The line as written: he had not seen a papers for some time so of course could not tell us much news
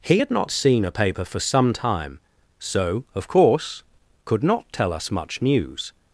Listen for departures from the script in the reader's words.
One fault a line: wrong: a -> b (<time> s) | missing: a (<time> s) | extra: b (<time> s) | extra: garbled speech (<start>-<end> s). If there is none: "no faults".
wrong: papers -> paper (0.9 s)